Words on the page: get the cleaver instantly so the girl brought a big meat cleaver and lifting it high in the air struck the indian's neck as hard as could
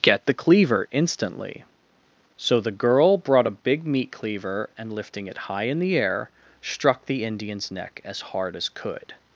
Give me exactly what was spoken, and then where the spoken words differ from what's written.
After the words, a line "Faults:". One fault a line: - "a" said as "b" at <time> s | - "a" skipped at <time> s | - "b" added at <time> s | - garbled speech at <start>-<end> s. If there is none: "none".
get the cleaver instantly so the girl brought a big meat cleaver and lifting it high in the air struck the indian's neck as hard as could
Faults:
none